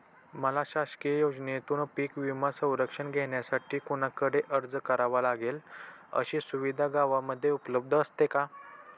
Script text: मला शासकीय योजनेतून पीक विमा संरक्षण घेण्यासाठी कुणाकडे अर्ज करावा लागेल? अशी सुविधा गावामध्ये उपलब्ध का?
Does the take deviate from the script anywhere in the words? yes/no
yes